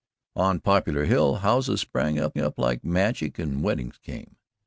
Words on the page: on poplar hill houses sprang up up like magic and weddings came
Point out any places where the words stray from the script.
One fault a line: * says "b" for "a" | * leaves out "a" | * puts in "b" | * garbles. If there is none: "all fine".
all fine